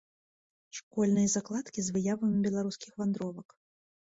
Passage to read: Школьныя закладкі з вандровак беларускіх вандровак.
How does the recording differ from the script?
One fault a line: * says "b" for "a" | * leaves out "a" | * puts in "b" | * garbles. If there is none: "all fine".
* says "выявамі" for "вандровак"